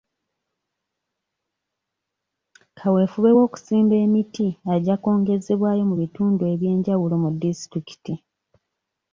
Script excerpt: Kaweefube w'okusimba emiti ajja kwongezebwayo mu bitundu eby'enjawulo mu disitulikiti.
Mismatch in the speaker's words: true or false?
false